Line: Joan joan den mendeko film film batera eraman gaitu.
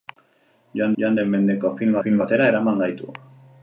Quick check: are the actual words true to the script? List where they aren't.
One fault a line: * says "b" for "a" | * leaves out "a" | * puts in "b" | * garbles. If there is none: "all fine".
all fine